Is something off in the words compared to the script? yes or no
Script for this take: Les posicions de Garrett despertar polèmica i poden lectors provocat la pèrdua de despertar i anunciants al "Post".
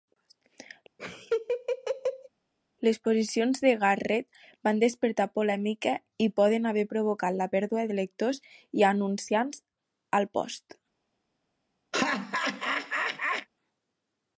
yes